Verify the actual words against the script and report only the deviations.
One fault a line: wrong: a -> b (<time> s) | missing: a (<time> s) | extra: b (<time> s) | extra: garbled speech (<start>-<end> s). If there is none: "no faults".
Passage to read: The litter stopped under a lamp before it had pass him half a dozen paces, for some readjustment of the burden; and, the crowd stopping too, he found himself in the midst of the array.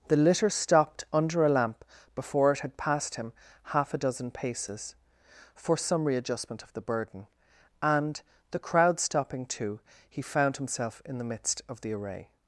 wrong: pass -> passed (2.8 s)